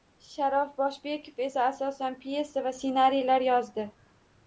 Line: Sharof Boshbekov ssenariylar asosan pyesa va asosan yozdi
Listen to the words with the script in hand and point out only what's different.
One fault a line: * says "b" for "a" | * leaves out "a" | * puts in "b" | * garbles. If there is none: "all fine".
* says "esa" for "ssenariylar"
* says "ssenariylar" for "asosan"